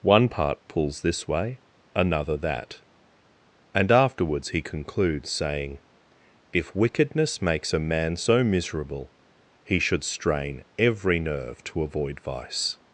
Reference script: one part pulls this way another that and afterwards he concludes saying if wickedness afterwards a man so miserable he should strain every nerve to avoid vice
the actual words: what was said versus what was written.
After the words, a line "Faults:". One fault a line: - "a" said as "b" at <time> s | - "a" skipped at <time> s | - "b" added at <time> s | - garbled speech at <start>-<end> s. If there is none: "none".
one part pulls this way another that and afterwards he concludes saying if wickedness makes a man so miserable he should strain every nerve to avoid vice
Faults:
- "afterwards" said as "makes" at 7.4 s